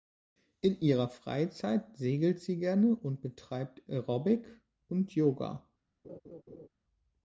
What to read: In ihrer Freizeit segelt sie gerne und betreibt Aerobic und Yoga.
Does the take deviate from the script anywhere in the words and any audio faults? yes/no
yes